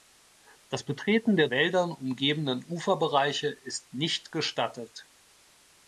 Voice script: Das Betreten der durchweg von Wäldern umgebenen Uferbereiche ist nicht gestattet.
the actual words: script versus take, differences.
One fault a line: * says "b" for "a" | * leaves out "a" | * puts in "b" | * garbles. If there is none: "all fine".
* leaves out "durchweg von"